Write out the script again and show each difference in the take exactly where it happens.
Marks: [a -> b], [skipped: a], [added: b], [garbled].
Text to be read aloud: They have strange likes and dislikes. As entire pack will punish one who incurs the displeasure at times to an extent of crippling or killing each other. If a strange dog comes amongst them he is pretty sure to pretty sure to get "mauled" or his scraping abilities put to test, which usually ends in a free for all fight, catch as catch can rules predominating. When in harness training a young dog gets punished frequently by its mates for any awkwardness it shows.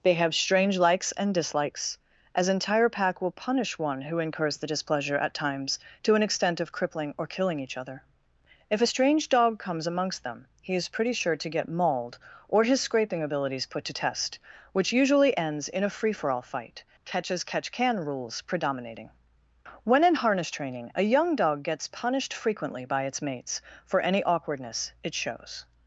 They have strange likes and dislikes. As entire pack will punish one who incurs the displeasure at times to an extent of crippling or killing each other. If a strange dog comes amongst them he is pretty sure to [skipped: pretty sure to] get "mauled" or his scraping abilities put to test, which usually ends in a free for all fight, catch as catch can rules predominating. When in harness training a young dog gets punished frequently by its mates for any awkwardness it shows.